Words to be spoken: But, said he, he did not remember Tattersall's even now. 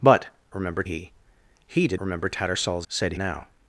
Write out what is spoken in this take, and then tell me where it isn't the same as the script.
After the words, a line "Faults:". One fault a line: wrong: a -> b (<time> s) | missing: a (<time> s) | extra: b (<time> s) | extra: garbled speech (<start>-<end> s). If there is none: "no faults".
But, remember he, he did remember Tattersall's said now.
Faults:
wrong: said -> remember (0.5 s)
missing: not (2.0 s)
wrong: even -> said (2.9 s)